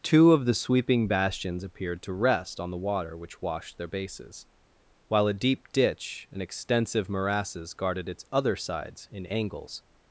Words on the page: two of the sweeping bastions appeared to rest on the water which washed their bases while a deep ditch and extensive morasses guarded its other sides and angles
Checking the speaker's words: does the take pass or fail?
fail